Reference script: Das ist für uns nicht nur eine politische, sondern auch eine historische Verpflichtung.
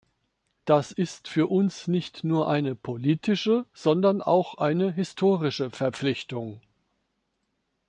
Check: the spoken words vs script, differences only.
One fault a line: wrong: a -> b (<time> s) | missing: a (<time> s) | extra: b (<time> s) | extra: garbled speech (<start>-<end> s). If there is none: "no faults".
no faults